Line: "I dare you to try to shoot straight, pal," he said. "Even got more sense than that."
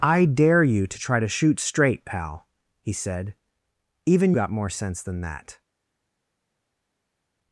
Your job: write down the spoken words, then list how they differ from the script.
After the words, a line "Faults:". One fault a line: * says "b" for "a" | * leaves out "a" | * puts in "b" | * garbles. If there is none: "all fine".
"I dare you to try to shoot straight, pal," he said. "Even got more sense than that."
Faults:
all fine